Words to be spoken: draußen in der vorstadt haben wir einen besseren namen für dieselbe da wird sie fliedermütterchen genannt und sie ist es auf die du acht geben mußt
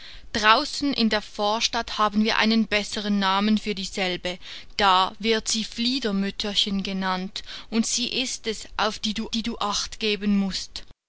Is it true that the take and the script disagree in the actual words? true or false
true